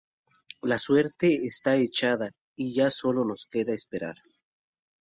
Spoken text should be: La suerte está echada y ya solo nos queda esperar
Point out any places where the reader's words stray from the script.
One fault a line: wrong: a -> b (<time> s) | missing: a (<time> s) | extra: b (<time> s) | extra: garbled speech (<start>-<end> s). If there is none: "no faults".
no faults